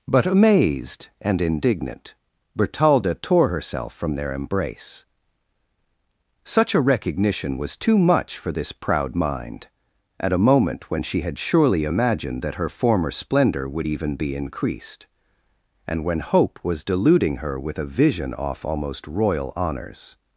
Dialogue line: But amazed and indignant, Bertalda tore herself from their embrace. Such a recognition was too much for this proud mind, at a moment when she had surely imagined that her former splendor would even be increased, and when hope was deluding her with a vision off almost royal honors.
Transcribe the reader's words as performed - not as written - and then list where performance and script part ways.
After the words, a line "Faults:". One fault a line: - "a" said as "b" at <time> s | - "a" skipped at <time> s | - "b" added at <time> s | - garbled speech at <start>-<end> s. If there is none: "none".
But amazed and indignant, Bertalda tore herself from their embrace. Such a recognition was too much for this proud mind, at a moment when she had surely imagined that her former splendor would even be increased, and when hope was deluding her with a vision off almost royal honors.
Faults:
none